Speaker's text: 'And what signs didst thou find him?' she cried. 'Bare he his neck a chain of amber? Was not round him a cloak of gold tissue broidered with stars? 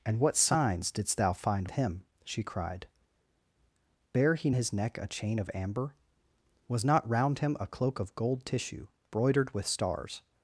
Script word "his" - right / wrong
right